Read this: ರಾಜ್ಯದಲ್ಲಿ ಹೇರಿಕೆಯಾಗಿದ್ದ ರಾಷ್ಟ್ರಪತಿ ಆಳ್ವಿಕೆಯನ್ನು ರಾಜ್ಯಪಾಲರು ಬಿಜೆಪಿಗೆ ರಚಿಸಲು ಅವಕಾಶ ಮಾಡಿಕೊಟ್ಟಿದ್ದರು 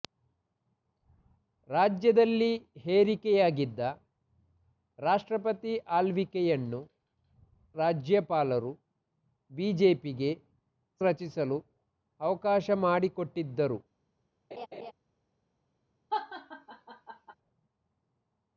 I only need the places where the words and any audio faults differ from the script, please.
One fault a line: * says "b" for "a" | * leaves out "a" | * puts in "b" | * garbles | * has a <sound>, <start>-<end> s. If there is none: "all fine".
* has a laugh, 14.5-14.9 s
* has a laugh, 16.1-17.3 s